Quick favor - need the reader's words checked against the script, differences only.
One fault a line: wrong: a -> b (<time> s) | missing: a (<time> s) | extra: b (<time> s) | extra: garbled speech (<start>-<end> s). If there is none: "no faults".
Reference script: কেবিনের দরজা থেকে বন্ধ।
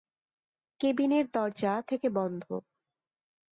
no faults